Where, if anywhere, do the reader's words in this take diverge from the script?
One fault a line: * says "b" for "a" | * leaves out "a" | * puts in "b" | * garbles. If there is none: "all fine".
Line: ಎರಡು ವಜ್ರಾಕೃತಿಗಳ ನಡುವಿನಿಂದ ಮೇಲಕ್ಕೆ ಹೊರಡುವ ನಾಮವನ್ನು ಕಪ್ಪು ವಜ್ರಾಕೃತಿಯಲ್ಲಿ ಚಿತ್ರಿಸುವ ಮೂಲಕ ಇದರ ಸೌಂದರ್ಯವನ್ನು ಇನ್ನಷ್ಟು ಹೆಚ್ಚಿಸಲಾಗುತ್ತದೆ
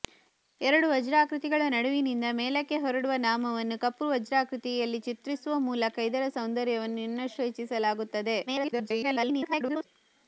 * garbles